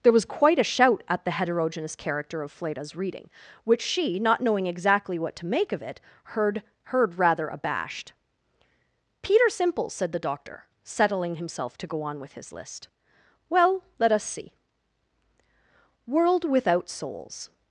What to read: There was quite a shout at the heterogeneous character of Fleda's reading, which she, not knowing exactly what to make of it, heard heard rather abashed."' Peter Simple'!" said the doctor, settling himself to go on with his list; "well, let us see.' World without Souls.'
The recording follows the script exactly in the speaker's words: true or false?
true